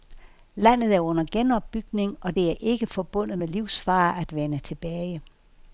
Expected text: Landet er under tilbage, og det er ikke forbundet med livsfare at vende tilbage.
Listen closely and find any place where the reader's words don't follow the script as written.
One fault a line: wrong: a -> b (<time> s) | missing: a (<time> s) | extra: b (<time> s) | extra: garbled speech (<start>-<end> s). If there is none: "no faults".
wrong: tilbage -> genopbygning (1.3 s)